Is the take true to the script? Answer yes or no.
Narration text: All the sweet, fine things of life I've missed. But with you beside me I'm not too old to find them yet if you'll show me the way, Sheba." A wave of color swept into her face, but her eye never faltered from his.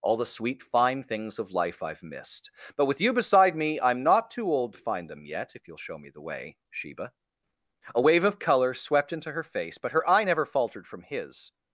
yes